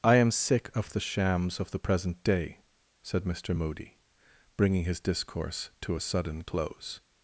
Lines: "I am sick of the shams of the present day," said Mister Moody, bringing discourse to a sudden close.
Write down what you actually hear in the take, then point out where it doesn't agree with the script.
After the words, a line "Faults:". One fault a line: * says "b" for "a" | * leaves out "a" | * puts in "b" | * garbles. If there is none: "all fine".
"I am sick of the shams of the present day," said Mister Moody, bringing his discourse to a sudden close.
Faults:
* puts in "his"